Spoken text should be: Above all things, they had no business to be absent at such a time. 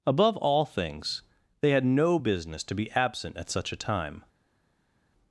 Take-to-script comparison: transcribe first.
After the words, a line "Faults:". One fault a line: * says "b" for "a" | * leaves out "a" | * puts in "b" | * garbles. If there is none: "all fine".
Above all things, they had no business to be absent at such a time.
Faults:
all fine